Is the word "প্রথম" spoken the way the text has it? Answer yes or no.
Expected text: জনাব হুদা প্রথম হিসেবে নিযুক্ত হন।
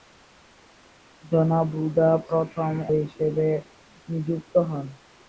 yes